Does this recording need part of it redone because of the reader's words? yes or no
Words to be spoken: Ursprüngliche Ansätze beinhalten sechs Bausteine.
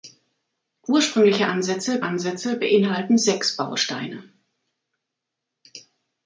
yes